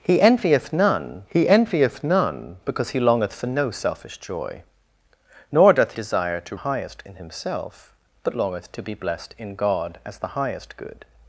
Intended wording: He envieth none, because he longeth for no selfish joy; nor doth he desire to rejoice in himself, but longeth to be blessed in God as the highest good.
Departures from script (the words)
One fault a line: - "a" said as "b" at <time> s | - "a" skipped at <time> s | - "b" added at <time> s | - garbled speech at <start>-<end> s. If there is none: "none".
- "he envieth none" added at 1.3 s
- "he" skipped at 5.9 s
- "rejoice" said as "highest" at 6.6 s